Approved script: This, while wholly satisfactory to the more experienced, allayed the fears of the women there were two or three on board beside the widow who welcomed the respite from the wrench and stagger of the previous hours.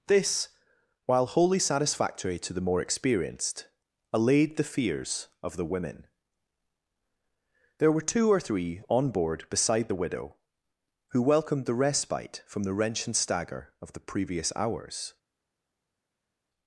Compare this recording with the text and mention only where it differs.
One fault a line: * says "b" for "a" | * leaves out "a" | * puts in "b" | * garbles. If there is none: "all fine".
all fine